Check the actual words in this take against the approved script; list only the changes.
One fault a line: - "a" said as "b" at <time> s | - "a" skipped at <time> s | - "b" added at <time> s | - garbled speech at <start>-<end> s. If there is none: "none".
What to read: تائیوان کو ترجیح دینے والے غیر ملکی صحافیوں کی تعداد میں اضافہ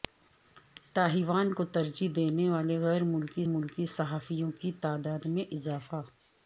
- "ملکی" added at 3.5 s